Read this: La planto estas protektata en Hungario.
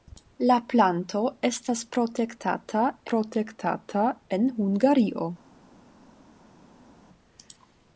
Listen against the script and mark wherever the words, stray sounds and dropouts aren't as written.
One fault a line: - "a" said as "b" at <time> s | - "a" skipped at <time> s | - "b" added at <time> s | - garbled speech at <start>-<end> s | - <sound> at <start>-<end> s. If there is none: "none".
- "protektata" added at 3.1 s